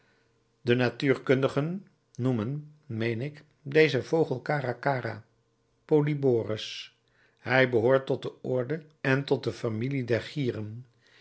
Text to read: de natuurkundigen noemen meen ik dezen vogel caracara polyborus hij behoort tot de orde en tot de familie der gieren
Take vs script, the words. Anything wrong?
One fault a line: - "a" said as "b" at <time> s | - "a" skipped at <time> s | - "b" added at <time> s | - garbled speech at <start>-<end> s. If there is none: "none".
none